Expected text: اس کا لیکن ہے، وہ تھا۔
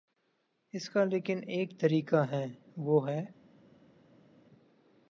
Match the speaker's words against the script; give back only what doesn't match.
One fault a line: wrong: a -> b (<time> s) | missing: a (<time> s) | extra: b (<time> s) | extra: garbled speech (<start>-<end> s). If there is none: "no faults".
extra: ایک طریقہ (1.5 s)
wrong: تھا -> ہے (3.1 s)